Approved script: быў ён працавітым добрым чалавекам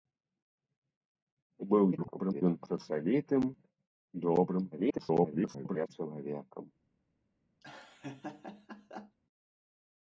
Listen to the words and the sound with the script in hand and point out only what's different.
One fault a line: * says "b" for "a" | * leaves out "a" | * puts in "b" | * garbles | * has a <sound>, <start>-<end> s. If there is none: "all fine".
* garbles
* garbles
* has a laugh, 7.6-9.2 s